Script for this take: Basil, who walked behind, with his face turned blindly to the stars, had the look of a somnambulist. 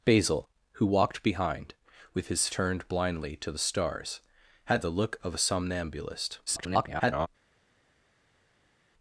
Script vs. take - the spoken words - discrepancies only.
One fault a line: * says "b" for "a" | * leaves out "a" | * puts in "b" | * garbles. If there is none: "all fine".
* leaves out "face"
* garbles